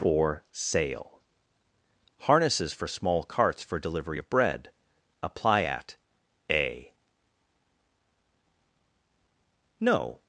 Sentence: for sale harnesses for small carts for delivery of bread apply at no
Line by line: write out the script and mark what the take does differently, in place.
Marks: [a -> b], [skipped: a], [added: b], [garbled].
for sale harnesses for small carts for delivery of bread apply at [added: a] no